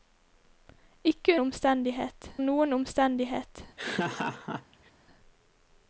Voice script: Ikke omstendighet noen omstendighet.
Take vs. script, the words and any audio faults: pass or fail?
fail